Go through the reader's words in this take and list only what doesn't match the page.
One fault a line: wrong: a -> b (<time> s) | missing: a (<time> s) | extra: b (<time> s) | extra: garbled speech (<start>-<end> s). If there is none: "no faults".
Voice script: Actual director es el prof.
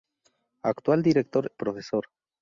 missing: es el (1.5 s)